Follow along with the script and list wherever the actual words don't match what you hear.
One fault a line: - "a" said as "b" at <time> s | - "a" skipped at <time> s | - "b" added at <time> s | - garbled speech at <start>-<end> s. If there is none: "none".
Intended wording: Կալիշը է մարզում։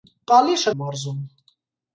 none